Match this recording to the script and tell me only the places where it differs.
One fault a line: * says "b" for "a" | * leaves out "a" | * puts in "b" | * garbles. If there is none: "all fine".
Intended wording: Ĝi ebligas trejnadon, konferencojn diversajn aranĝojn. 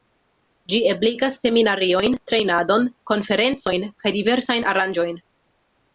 * puts in "seminariojn"
* puts in "kaj"